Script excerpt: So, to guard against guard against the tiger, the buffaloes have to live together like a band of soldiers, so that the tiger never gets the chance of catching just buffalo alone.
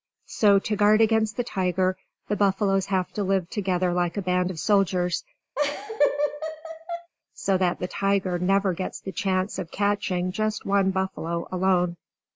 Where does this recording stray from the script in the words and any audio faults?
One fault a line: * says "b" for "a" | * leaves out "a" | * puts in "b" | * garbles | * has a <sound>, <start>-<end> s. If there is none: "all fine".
* leaves out "guard against"
* has a laugh, 5.5-7.1 s
* puts in "one"